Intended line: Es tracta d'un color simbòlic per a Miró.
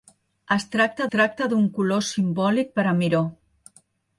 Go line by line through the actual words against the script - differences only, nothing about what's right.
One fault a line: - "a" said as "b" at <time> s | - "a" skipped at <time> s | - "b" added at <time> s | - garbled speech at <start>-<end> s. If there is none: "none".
- "tracta" added at 1.1 s